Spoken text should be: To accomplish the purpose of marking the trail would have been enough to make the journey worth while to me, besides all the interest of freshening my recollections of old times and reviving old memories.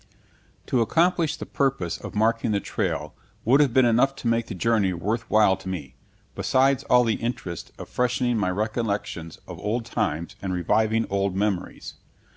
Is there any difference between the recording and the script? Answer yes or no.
no